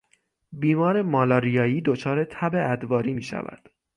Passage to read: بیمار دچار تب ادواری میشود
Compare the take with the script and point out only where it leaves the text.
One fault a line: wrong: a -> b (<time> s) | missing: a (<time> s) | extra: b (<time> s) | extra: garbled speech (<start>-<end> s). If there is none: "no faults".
extra: مالاریایی (1.0 s)